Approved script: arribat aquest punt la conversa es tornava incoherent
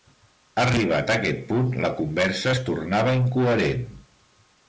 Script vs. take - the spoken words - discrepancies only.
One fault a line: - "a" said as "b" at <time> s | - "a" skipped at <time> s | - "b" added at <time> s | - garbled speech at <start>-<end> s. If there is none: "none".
none